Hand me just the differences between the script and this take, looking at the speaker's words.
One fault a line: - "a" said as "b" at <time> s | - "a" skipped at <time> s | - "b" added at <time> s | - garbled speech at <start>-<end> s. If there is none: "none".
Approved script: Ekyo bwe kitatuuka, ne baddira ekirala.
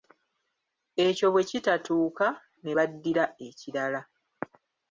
none